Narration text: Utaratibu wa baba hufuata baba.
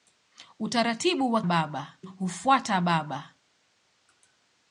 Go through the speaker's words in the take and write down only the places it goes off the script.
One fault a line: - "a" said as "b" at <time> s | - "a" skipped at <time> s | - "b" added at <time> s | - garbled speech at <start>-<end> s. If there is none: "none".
none